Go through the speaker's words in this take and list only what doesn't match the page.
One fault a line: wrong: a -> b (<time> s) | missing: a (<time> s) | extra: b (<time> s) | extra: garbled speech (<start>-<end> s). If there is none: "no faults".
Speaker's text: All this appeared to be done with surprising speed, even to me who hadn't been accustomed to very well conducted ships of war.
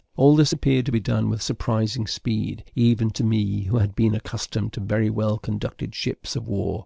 wrong: hadn't -> had (3.8 s)